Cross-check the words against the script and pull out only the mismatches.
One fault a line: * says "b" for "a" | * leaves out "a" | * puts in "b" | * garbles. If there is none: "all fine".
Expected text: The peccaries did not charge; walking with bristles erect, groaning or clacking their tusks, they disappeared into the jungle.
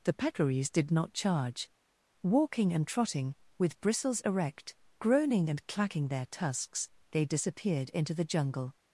* puts in "and trotting"
* says "and" for "or"